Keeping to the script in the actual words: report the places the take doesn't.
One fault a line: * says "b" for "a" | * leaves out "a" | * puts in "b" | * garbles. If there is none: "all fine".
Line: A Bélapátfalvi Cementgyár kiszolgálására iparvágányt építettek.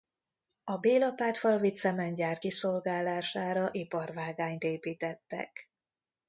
all fine